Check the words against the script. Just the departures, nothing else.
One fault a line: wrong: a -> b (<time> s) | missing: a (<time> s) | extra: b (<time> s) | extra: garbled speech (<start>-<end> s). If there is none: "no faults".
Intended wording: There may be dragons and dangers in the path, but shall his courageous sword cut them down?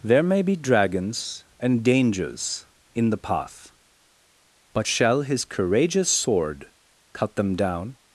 no faults